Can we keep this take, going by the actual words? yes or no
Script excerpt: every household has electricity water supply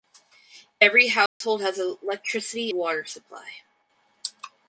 yes